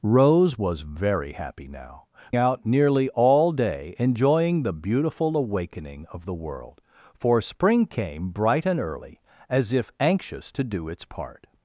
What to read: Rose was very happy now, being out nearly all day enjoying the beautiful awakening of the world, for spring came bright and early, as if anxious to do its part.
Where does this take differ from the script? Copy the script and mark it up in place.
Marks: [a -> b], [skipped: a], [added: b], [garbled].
Rose was very happy now, [skipped: being] out nearly all day enjoying the beautiful awakening of the world, for spring came bright and early, as if anxious to do its part.